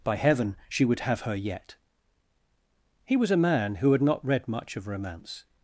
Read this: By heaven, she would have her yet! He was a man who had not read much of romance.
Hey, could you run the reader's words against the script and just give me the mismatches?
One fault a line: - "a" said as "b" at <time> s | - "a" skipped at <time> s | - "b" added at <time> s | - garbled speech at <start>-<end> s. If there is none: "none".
none